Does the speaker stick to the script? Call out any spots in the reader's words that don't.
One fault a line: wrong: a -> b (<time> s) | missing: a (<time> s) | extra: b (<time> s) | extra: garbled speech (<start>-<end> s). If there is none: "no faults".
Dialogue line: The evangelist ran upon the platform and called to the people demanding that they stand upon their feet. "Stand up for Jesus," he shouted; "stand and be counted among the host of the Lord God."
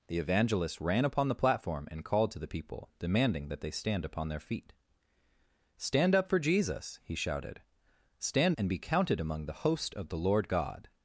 no faults